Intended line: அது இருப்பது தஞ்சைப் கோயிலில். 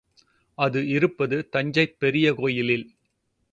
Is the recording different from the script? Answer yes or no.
yes